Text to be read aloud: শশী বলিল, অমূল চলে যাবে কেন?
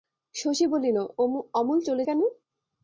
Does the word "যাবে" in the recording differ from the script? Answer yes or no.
yes